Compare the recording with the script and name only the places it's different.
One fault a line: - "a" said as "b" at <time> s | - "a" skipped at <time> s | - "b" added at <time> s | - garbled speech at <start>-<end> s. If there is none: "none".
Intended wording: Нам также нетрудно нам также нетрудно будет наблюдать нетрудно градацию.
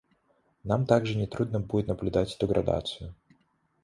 - "нам также нетрудно" skipped at 1.6 s
- "нетрудно" said as "эту" at 2.4 s